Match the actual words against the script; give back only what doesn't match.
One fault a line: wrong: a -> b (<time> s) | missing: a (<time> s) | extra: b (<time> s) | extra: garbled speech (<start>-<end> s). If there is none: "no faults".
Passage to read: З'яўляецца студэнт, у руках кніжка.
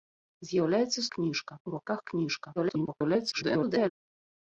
wrong: студэнт -> кніжка (1.1 s)
extra: garbled speech (2.6-3.9 s)